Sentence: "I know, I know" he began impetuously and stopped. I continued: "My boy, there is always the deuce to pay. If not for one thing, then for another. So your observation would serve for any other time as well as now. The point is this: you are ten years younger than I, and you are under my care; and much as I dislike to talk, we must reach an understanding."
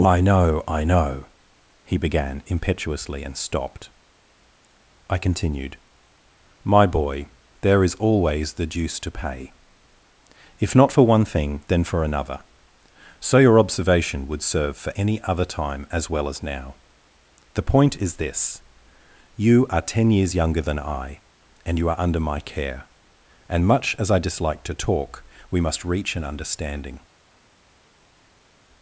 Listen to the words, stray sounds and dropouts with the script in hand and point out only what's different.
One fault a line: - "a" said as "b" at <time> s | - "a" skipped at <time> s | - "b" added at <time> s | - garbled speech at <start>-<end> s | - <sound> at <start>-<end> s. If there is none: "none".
none